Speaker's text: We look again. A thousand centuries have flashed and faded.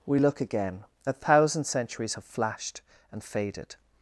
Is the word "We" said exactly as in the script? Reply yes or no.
yes